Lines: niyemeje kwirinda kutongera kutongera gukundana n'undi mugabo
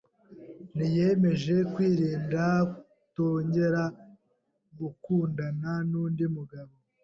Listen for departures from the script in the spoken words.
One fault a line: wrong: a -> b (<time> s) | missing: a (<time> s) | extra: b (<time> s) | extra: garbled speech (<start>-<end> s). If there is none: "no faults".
missing: kutongera (3.8 s)